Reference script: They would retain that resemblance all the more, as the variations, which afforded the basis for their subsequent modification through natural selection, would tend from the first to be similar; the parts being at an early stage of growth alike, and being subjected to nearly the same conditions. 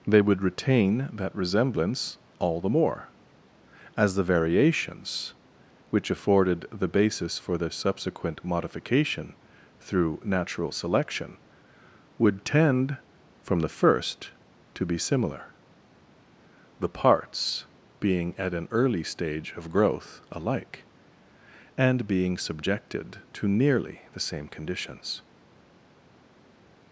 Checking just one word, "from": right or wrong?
right